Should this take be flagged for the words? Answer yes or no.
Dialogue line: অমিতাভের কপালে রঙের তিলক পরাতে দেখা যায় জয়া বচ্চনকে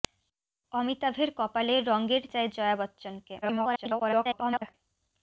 yes